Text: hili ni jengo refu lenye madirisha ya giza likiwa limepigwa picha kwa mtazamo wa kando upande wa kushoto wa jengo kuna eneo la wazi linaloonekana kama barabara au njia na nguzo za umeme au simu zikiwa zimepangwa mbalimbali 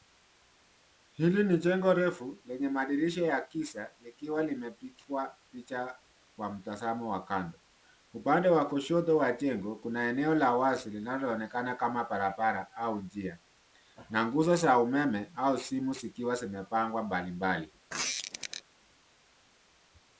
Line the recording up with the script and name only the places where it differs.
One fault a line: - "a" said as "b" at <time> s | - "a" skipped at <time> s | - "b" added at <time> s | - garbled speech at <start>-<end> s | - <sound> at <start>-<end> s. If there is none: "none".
- squeak at 17.9-18.6 s